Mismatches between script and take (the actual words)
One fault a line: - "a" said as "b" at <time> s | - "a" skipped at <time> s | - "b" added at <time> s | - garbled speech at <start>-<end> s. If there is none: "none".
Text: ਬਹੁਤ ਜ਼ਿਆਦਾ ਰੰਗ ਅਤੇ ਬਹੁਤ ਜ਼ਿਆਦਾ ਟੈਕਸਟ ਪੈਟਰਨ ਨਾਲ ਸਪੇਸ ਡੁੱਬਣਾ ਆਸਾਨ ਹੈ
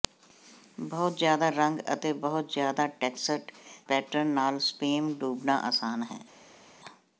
none